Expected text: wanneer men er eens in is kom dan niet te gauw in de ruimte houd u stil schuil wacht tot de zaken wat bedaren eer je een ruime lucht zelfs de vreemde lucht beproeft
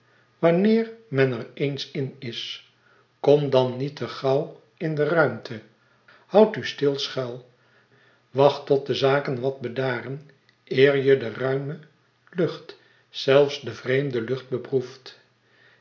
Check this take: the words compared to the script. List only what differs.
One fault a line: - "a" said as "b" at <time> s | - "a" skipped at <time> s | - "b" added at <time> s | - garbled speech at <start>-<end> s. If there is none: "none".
- "een" said as "de" at 11.2 s